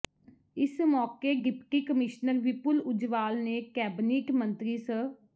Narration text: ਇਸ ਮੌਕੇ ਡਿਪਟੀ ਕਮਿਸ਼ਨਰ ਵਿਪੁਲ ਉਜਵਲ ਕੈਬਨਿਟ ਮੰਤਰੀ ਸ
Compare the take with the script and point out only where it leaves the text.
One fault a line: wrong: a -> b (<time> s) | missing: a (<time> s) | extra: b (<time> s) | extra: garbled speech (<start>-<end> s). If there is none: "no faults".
extra: ਨੇ (3.4 s)